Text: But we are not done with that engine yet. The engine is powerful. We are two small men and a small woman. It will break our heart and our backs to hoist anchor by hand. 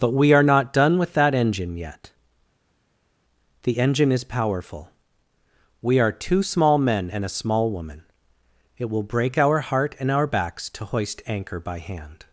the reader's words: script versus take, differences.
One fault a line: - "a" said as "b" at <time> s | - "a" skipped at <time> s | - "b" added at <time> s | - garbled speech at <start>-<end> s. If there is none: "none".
none